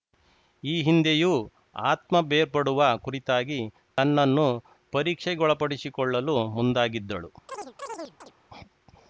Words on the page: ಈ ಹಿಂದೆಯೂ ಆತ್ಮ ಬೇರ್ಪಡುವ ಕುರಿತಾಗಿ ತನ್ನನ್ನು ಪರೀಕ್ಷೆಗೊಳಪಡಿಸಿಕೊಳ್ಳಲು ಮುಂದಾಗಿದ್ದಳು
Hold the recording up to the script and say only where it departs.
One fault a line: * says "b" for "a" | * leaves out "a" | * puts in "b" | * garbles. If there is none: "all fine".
all fine